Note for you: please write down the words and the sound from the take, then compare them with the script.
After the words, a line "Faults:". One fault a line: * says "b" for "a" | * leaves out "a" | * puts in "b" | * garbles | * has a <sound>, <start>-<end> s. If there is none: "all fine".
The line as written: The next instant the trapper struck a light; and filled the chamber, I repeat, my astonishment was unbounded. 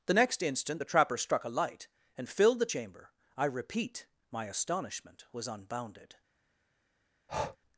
The next instant the trapper struck a light; and filled the chamber, I repeat, my astonishment was unbounded.
Faults:
* has a breath, 7.3-7.6 s